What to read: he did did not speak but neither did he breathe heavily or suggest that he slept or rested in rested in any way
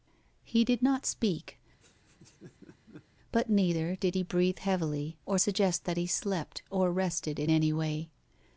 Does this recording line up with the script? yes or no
no